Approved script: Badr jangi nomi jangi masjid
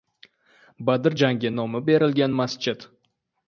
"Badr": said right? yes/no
yes